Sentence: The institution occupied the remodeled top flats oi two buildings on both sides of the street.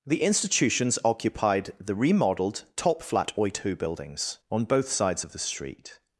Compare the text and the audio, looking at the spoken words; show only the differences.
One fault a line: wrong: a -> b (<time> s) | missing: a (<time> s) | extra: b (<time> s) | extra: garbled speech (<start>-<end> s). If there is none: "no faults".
wrong: institution -> institutions (0.2 s)
wrong: flats -> flat (3.0 s)